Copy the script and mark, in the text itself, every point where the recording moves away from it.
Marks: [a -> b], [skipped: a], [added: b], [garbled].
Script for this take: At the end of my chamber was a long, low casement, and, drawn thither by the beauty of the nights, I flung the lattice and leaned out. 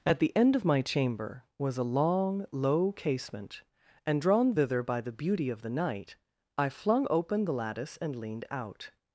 At the end of my chamber was a long, low casement, and, drawn thither by the beauty of the [nights, -> night] I flung [added: open] the lattice and leaned out.